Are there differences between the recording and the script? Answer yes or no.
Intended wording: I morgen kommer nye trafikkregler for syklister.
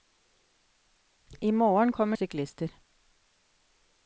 yes